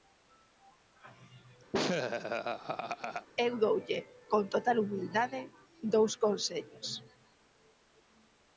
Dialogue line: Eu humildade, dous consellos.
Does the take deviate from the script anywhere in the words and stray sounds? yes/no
yes